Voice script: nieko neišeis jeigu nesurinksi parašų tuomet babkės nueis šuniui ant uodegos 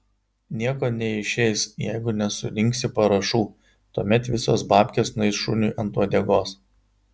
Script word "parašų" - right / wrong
right